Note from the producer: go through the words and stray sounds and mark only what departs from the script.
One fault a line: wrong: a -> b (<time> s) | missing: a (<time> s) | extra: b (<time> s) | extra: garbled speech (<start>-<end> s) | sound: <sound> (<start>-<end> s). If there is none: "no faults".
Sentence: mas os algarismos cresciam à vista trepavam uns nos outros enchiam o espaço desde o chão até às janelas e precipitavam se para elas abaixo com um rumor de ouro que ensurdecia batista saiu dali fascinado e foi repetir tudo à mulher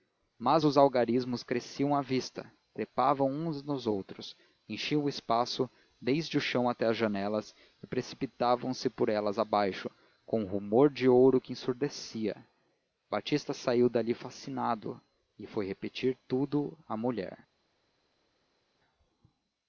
wrong: para -> por (8.9 s)